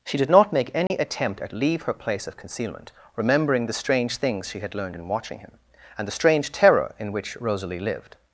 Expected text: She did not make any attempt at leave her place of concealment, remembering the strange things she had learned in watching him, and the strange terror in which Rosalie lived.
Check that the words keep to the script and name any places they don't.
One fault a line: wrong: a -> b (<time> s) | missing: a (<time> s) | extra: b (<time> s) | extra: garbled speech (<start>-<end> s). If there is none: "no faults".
no faults